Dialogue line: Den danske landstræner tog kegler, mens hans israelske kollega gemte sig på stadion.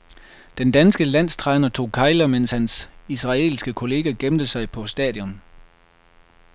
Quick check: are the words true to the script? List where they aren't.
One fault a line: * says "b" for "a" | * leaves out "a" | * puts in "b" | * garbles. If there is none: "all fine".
all fine